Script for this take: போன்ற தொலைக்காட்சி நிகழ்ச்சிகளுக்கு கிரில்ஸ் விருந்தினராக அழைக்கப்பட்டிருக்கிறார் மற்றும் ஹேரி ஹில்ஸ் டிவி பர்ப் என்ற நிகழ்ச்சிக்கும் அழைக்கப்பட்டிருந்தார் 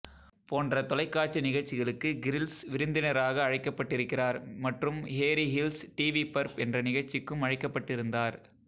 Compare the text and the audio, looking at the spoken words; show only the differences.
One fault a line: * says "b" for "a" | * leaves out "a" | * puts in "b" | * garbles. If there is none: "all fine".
all fine